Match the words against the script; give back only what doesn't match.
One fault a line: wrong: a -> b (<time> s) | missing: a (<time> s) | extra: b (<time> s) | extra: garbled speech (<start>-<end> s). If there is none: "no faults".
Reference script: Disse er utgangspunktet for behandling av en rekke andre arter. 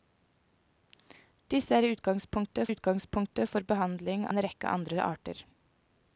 extra: utgangspunktet (2.7 s)
missing: av (4.3 s)